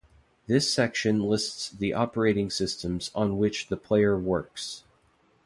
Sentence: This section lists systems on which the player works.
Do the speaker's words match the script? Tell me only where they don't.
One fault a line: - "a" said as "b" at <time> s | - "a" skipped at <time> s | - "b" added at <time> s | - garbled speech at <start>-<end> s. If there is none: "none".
- "the operating" added at 1.7 s